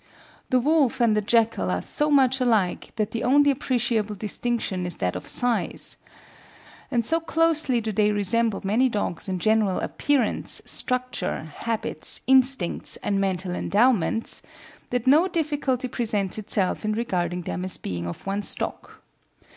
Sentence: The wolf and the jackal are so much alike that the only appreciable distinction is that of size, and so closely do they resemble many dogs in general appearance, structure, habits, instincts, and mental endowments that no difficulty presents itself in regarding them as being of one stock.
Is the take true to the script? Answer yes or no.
yes